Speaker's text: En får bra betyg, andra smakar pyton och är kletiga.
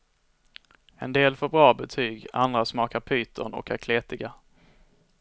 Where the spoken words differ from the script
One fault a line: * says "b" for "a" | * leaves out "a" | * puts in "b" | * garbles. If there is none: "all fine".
* puts in "del"